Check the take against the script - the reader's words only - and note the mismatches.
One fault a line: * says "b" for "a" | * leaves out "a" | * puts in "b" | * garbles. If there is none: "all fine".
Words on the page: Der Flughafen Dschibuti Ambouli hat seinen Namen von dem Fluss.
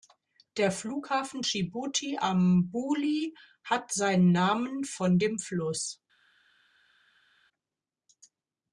all fine